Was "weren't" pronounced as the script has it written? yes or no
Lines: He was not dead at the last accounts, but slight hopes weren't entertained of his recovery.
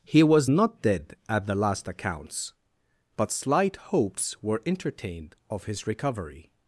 no